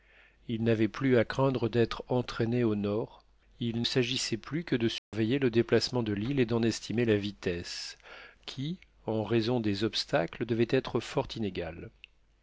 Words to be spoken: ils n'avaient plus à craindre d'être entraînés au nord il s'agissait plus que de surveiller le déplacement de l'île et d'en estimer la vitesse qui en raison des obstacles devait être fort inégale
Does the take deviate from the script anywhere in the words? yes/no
no